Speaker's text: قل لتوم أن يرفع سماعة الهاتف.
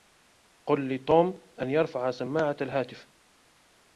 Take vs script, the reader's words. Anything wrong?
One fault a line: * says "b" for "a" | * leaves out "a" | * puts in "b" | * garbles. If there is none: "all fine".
all fine